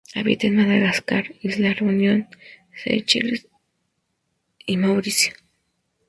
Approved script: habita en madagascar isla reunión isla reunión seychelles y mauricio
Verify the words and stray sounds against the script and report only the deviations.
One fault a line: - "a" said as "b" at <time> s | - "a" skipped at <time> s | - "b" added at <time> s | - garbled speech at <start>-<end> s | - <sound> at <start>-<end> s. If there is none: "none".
- "isla reunión" skipped at 2.3 s